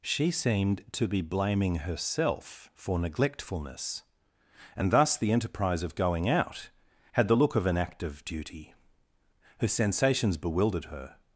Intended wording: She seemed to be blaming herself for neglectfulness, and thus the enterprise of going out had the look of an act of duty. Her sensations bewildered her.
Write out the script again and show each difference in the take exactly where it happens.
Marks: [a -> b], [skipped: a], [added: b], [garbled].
She seemed to be blaming herself for neglectfulness, and thus the enterprise of going out had the look of an act of duty. Her sensations bewildered her.